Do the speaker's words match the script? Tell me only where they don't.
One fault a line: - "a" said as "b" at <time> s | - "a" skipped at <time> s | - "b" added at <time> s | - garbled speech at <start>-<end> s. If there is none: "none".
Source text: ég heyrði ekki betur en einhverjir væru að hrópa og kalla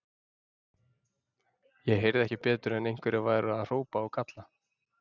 none